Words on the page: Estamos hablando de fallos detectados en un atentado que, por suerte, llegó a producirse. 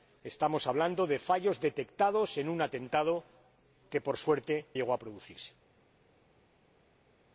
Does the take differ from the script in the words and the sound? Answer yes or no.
no